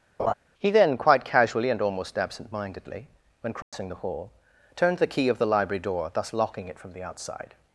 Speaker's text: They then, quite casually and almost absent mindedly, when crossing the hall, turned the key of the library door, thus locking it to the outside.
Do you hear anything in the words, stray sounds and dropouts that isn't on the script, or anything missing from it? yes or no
yes